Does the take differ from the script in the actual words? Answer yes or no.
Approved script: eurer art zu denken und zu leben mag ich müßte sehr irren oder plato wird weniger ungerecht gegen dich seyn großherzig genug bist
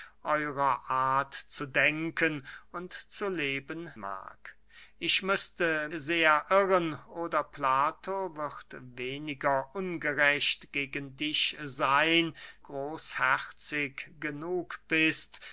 no